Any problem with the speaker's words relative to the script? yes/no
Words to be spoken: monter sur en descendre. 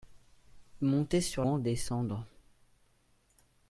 no